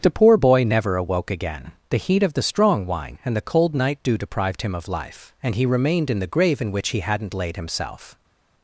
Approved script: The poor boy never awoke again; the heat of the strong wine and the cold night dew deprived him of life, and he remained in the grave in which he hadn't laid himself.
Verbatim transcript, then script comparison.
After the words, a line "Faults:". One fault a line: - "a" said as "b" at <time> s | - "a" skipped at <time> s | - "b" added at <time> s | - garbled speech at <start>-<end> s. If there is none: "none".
The poor boy never awoke again; the heat of the strong wine and the cold night dew deprived him of life, and he remained in the grave in which he hadn't laid himself.
Faults:
none